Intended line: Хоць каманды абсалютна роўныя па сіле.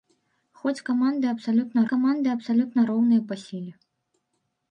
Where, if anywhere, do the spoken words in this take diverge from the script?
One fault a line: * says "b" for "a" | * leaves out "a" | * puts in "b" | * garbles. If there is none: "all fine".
* puts in "каманды абсалютна"